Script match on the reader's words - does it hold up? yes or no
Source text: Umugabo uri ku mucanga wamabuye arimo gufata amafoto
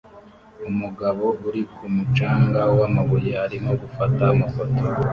yes